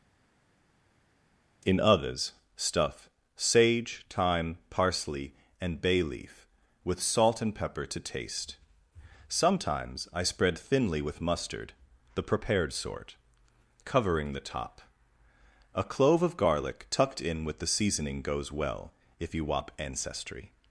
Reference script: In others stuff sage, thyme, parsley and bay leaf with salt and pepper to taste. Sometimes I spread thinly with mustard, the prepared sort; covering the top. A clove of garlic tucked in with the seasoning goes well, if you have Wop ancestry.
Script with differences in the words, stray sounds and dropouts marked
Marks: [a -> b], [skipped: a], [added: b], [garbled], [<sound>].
In others stuff sage, thyme, parsley and bay leaf with salt and pepper to taste. Sometimes I spread thinly with mustard, the prepared sort; covering the top. A clove of garlic tucked in with the seasoning goes well, if you [skipped: have] Wop ancestry.